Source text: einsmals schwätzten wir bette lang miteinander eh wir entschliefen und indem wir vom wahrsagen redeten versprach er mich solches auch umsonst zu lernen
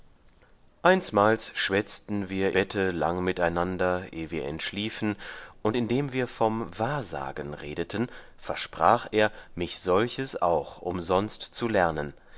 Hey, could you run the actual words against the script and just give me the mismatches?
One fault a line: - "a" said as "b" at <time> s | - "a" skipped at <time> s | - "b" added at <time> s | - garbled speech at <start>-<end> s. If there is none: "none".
none